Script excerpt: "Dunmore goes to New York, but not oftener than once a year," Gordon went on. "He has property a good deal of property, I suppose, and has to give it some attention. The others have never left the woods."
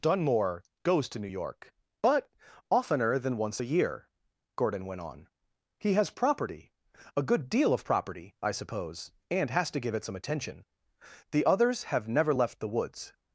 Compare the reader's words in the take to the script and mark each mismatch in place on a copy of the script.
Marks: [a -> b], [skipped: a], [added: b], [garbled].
"Dunmore goes to New York, but [skipped: not] oftener than once a year," Gordon went on. "He has property a good deal of property, I suppose, and has to give it some attention. The others have never left the woods."